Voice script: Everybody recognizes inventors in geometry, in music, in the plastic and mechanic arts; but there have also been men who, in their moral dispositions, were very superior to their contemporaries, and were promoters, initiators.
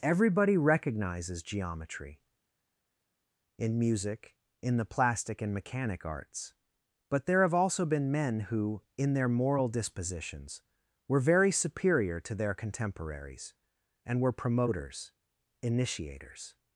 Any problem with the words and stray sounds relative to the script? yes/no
yes